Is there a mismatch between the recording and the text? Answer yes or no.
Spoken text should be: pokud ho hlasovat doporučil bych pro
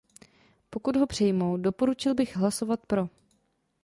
yes